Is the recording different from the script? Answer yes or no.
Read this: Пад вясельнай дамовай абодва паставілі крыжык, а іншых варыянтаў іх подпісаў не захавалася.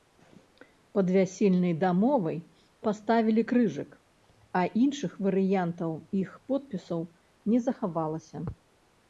yes